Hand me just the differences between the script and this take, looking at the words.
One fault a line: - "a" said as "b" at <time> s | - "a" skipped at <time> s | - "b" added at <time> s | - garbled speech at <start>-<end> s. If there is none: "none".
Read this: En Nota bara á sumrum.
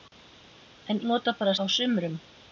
none